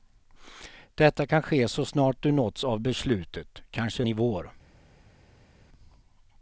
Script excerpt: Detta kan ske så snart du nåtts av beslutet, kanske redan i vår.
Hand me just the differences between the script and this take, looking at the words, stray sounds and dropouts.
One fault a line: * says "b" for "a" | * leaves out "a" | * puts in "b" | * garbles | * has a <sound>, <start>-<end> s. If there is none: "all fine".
* leaves out "redan"